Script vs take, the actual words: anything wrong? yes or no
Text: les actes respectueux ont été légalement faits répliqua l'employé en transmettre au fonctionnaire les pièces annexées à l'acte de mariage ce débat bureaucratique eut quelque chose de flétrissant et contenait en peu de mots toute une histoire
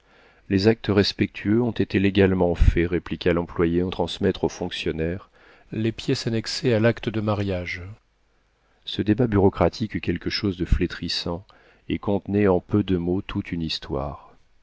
no